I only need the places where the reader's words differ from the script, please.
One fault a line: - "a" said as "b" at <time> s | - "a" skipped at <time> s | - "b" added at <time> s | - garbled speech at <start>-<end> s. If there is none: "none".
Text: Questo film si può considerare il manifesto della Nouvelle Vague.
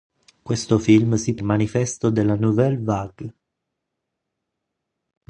- "può considerare" skipped at 1.4 s